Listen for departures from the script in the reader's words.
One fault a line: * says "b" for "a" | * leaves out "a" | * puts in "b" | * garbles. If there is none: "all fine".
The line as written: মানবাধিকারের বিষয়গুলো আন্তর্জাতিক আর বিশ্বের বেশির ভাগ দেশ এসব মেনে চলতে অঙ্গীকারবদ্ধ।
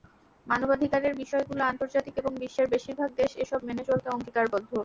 * says "এবং" for "আর"